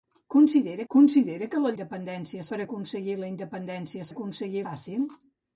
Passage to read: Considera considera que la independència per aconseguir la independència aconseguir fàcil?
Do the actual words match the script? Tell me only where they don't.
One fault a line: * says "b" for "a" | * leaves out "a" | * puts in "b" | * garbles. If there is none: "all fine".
all fine